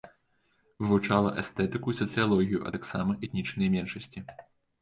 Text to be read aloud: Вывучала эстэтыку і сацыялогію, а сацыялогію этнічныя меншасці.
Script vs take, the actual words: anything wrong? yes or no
yes